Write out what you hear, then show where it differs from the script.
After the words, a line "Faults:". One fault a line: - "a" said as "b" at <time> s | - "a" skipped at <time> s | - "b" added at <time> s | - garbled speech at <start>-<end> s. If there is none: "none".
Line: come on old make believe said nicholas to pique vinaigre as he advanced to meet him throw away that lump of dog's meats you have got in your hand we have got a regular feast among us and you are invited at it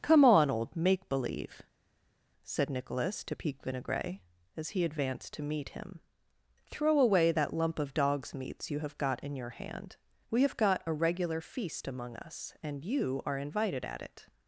come on old make believe said nicholas to pique vinaigre as he advanced to meet him throw away that lump of dog's meats you have got in your hand we have got a regular feast among us and you are invited at it
Faults:
none